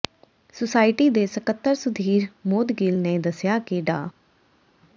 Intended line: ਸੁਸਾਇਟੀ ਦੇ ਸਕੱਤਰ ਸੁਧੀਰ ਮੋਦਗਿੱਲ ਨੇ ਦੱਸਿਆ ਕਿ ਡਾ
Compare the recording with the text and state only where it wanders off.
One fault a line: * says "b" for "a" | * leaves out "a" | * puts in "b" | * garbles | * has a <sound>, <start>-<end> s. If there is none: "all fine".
all fine